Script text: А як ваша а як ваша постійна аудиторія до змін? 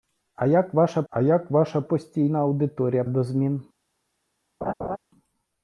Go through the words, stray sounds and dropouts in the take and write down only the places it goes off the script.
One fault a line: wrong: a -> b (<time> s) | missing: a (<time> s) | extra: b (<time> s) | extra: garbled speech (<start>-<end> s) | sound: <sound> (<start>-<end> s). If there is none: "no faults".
sound: laugh (4.6-5.0 s)